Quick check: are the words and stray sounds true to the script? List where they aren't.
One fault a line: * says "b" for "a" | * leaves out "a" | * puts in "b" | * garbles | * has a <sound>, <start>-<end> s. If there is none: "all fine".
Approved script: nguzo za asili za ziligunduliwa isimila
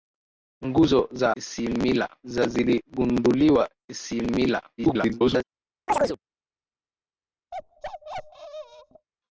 * says "isimila" for "asili"
* garbles
* has a chirp, 5.9-6.2 s
* has a bark, 7.5-9.1 s